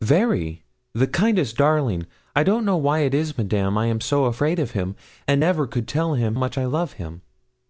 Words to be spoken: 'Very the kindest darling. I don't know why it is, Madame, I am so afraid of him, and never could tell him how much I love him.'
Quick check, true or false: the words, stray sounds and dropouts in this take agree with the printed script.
false